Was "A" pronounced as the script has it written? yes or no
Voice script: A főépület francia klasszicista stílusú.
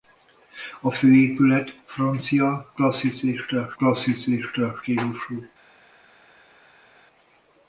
yes